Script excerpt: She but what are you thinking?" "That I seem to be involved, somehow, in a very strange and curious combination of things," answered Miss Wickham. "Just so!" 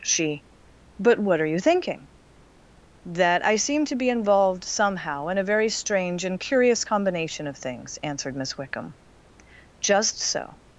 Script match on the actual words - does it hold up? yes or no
yes